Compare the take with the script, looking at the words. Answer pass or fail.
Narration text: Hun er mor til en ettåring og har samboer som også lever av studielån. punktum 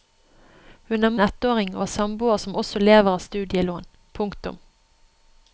fail